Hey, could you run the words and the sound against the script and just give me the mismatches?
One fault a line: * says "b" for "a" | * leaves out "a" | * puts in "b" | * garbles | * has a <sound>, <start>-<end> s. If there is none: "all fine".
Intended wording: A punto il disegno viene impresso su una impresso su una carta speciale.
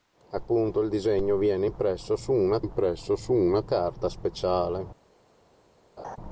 * has a laugh, 6.0-6.2 s